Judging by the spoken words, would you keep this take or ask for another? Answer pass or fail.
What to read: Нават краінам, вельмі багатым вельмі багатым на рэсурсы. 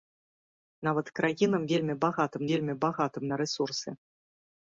pass